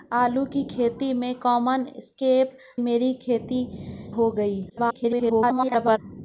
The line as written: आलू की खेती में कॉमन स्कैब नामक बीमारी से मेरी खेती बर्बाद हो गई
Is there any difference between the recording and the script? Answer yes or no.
yes